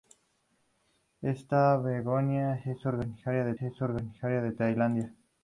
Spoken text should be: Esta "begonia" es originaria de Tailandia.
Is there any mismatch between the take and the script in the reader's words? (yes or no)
yes